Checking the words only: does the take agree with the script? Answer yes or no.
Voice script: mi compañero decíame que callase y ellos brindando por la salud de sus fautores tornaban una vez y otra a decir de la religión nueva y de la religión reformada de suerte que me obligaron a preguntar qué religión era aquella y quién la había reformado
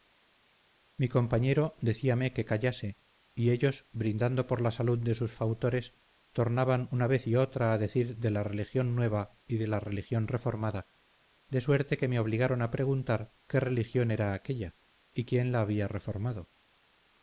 yes